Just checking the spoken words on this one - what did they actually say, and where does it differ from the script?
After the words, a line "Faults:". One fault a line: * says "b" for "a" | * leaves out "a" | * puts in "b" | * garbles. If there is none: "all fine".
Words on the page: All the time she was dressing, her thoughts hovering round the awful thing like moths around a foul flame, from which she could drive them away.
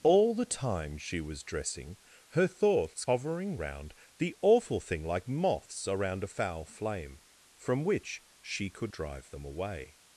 All the time she was dressing, her thoughts hovering round the awful thing like moths around a foul flame, from which she could drive them away.
Faults:
all fine